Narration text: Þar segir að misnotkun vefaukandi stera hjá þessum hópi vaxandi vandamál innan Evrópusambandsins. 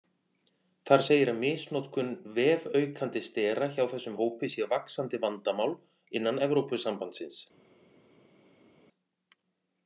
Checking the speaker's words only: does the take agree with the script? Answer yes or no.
no